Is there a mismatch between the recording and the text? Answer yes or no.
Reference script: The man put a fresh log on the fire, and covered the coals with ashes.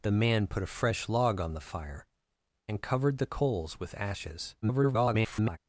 yes